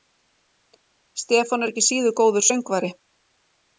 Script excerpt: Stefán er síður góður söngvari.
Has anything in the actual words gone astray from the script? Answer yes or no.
yes